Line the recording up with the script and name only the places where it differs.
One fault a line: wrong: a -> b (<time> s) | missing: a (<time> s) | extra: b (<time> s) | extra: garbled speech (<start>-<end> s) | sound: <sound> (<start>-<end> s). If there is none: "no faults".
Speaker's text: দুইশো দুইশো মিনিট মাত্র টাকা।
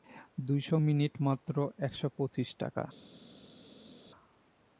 missing: দুইশো (0.8 s)
extra: একশো পঁচিশ (1.8 s)